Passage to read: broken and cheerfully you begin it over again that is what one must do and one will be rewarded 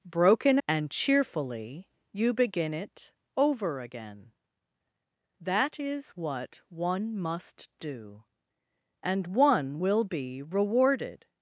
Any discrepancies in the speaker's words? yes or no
no